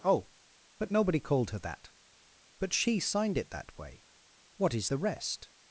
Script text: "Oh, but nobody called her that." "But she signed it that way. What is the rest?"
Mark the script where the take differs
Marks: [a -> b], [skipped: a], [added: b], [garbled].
"Oh, but nobody called her that." "But she signed it that way. What is the rest?"